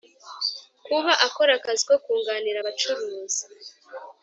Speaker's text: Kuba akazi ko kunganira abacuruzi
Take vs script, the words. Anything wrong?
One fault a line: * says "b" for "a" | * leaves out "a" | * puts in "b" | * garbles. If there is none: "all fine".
* puts in "akora"